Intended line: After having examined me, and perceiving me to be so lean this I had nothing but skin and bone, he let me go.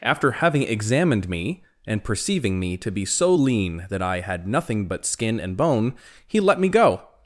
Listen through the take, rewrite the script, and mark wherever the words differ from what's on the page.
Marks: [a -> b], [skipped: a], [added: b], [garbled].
After having examined me, and perceiving me to be so lean [this -> that] I had nothing but skin and bone, he let me go.